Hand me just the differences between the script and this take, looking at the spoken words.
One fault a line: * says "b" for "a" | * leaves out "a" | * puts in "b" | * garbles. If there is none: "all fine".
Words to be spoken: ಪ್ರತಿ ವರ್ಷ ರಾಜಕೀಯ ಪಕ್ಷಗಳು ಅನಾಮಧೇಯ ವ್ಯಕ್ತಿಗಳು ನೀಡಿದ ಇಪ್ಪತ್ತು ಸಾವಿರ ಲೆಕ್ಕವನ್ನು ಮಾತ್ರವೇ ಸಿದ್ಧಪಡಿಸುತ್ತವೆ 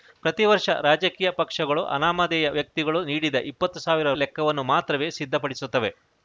all fine